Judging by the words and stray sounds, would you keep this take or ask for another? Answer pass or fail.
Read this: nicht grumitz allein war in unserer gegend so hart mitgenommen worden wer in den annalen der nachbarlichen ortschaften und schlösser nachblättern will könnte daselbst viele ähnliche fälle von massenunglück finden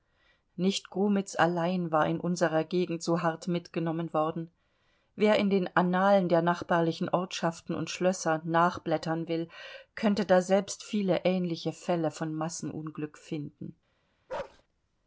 fail